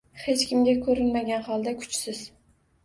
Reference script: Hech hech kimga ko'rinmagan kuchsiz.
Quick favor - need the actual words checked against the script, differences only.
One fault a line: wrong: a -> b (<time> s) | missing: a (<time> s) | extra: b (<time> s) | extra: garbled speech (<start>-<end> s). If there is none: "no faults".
missing: hech (0.5 s)
extra: holda (1.5 s)